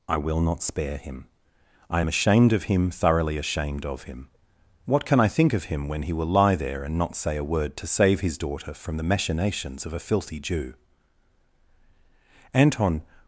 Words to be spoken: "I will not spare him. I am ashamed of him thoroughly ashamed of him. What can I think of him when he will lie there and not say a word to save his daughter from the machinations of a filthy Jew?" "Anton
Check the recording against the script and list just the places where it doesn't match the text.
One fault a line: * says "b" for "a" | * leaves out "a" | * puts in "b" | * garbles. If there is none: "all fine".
all fine